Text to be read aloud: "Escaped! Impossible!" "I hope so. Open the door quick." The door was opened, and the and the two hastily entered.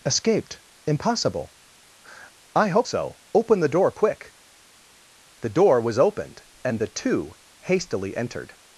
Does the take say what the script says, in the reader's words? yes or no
no